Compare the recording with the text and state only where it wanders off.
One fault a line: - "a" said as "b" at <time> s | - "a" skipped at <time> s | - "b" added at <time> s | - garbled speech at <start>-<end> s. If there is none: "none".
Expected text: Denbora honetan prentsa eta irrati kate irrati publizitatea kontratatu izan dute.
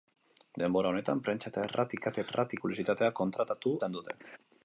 none